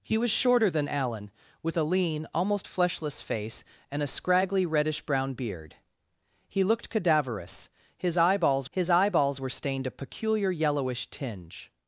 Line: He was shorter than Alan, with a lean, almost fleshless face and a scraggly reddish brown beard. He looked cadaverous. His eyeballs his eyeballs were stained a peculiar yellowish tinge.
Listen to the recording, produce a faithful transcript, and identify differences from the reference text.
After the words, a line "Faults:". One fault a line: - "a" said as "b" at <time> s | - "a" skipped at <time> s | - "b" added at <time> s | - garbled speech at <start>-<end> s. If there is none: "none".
He was shorter than Alan, with a lean, almost fleshless face and a scraggly reddish brown beard. He looked cadaverous. His eyeballs his eyeballs were stained a peculiar yellowish tinge.
Faults:
none